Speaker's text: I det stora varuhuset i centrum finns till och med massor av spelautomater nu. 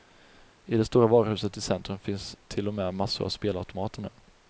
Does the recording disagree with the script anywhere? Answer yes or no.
no